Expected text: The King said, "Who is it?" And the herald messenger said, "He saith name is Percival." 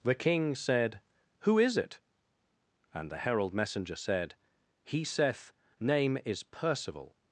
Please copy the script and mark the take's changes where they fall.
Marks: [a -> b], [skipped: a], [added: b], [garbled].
The King said, "Who is it?" And the herald messenger said, "He saith name is Percival."